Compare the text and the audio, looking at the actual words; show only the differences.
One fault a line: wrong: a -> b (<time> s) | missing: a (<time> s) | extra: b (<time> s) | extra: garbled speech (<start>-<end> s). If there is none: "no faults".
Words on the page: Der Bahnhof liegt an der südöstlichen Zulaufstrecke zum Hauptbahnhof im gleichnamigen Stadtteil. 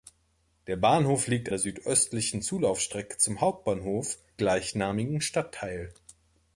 missing: an (1.5 s)
missing: im (4.2 s)